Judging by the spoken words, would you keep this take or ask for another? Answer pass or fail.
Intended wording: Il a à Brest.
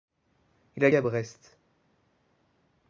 pass